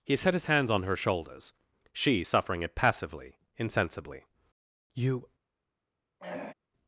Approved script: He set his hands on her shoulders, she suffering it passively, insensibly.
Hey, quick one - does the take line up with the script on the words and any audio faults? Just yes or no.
no